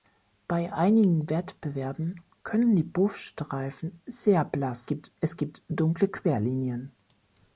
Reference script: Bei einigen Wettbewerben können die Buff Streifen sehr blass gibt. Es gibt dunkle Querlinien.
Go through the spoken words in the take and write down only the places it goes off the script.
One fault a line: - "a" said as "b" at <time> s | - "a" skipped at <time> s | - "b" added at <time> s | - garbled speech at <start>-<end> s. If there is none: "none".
none